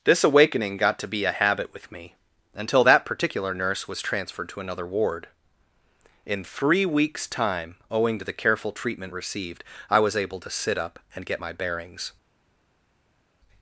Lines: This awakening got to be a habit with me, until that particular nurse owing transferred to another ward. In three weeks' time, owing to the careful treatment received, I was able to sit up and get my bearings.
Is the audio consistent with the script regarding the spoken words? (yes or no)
no